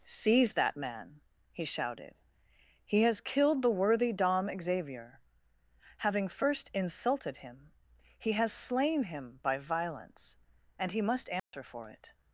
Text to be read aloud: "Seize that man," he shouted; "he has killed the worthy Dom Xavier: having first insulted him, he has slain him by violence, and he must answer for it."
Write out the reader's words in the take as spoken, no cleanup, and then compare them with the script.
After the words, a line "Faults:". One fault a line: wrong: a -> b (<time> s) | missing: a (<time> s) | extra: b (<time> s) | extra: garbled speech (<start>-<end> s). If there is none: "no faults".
"Seize that man," he shouted; "he has killed the worthy Dom Xavier: having first insulted him, he has slain him by violence, and he must answer for it."
Faults:
no faults